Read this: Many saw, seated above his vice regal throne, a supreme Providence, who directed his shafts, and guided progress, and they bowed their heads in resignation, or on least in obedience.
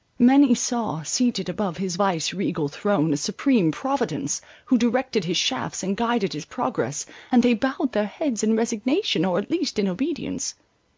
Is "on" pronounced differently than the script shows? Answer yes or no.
yes